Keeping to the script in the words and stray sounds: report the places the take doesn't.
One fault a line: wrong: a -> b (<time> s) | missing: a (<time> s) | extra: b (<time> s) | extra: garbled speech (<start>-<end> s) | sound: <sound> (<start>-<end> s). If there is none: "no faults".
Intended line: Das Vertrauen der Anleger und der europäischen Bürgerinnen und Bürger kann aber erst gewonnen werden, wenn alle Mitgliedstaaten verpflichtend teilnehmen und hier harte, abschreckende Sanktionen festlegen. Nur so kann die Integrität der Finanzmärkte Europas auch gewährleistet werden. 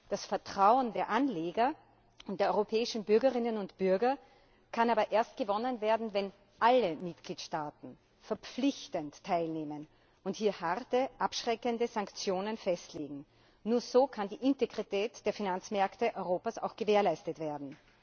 no faults